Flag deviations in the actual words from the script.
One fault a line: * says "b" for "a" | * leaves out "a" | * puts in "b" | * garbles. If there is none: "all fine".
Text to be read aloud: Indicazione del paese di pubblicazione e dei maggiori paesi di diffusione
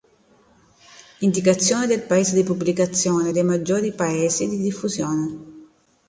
all fine